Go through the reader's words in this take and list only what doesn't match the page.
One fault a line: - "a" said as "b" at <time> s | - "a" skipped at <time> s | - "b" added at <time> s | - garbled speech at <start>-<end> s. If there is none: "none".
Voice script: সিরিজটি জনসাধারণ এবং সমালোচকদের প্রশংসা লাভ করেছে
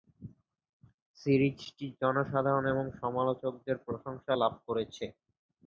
none